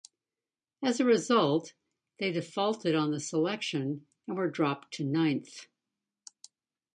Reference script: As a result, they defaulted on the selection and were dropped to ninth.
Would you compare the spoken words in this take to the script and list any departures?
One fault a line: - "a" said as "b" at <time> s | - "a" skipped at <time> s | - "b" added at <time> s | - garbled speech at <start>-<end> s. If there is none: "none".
none